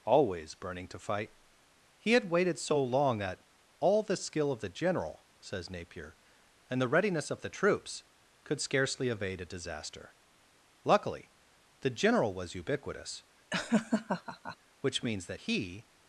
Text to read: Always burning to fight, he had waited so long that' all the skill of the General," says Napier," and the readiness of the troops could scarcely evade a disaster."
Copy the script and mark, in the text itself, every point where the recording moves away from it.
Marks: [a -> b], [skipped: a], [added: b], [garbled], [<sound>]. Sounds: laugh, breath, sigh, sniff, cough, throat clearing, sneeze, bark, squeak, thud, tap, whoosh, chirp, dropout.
Always burning to fight, he had waited so long that' all the skill of the General," says Napier," and the readiness of the troops could scarcely evade a disaster." [added: Luckily the General was ubiquitous which means that he] [laugh]